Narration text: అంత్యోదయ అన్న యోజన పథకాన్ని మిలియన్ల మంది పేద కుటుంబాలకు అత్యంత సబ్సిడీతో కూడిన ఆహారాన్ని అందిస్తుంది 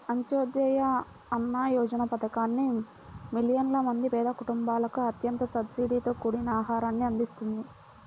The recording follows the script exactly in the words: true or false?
true